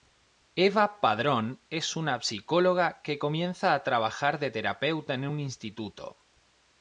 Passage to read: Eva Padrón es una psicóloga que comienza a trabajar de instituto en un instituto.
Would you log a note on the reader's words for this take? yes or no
yes